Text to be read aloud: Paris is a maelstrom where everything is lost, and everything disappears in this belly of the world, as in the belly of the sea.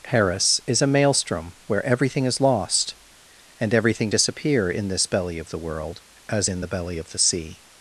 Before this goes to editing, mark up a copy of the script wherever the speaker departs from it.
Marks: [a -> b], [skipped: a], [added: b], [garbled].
Paris is a maelstrom where everything is lost, and everything [disappears -> disappear] in this belly of the world, as in the belly of the sea.